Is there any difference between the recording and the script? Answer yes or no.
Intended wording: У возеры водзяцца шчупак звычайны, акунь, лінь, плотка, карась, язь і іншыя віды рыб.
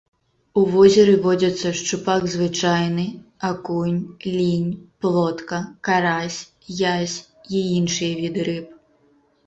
no